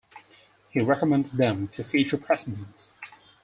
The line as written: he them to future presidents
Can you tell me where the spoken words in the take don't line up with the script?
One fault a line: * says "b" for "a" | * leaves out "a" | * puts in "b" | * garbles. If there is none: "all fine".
* puts in "recommended"